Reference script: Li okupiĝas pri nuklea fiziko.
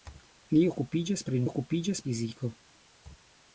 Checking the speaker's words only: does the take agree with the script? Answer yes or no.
no